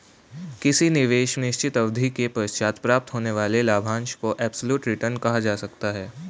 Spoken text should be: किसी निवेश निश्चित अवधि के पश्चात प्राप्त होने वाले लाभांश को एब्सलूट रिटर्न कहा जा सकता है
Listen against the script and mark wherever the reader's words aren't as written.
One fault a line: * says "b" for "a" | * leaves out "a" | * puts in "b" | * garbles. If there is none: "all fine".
all fine